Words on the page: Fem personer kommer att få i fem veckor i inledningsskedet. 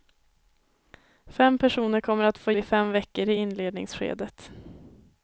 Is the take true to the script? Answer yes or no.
yes